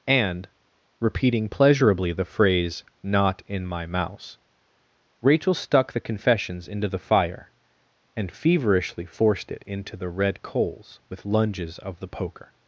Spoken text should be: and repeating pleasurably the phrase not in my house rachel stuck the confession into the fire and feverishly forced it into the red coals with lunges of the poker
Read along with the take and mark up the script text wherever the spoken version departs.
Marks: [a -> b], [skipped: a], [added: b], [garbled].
and repeating pleasurably the phrase not in my [house -> mouse] rachel stuck the [confession -> confessions] into the fire and feverishly forced it into the red coals with lunges of the poker